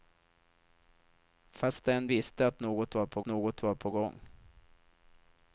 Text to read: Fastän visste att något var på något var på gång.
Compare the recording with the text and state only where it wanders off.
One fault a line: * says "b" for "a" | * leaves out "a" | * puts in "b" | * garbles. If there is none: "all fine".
all fine